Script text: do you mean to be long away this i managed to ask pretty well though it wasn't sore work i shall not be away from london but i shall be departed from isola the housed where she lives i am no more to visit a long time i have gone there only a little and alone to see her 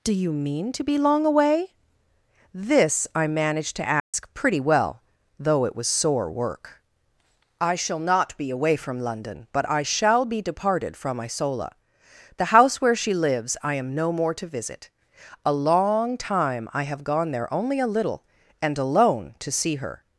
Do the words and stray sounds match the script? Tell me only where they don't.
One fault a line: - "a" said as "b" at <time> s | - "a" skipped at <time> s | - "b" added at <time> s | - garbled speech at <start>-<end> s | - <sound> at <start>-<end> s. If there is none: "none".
- dropout at 4.0-4.1 s
- "wasn't" said as "was" at 5.8 s
- "housed" said as "house" at 12.6 s